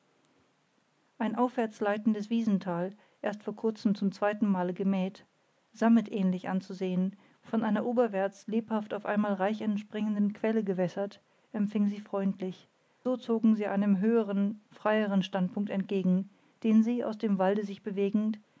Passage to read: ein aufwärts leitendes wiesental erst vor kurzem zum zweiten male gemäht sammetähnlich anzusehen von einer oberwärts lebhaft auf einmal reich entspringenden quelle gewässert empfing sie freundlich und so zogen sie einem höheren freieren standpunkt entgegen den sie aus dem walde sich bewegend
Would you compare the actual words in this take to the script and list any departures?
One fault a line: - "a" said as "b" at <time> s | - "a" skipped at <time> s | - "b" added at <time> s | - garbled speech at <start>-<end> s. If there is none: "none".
- "und" skipped at 12.7 s